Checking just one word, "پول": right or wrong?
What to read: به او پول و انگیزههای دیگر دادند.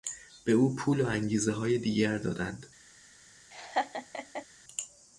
right